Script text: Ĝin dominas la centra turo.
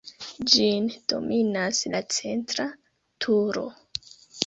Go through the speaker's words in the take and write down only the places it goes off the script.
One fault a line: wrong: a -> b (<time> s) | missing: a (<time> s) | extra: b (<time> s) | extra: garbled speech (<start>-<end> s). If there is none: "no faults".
no faults